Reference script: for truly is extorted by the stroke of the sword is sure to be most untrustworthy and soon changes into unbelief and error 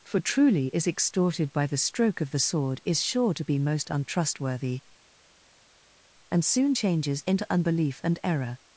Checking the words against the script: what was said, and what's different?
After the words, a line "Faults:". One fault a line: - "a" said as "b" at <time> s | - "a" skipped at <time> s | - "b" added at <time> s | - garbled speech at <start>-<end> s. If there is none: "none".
for truly is extorted by the stroke of the sword is sure to be most untrustworthy and soon changes into unbelief and error
Faults:
none